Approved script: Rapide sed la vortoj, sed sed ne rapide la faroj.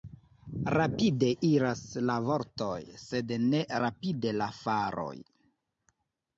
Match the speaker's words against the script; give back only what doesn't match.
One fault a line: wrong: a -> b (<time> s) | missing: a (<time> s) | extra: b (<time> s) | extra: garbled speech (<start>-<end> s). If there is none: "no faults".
wrong: sed -> iras (1.5 s)
missing: sed (3.4 s)